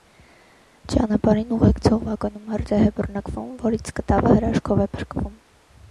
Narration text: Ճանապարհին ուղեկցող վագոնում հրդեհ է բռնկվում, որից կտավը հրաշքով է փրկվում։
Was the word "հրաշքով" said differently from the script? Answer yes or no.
no